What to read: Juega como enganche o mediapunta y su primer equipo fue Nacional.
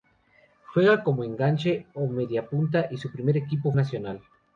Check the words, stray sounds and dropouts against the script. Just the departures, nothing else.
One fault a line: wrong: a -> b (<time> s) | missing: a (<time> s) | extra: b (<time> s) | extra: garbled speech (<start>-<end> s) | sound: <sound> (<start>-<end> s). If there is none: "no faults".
missing: fue (3.7 s)